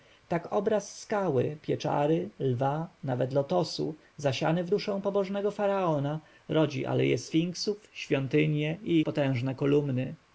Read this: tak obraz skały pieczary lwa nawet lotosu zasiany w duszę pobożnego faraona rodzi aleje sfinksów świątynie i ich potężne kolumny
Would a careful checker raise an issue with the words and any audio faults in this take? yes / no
yes